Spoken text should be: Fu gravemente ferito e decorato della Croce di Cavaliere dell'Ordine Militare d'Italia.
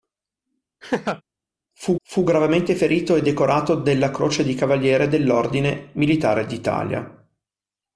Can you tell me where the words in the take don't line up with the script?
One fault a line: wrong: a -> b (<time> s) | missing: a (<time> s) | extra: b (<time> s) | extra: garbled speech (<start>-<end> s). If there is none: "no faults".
extra: fu (2.0 s)